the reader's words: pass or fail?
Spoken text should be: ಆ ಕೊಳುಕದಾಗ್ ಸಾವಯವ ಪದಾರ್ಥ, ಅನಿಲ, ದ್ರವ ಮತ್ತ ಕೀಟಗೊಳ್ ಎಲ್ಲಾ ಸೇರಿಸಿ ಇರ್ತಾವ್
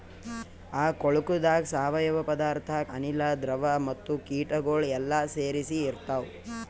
pass